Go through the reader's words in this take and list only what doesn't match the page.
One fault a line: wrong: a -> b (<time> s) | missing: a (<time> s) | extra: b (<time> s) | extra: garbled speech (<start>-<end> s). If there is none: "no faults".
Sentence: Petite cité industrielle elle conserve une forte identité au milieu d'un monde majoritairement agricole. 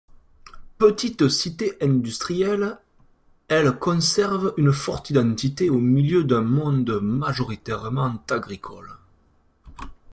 no faults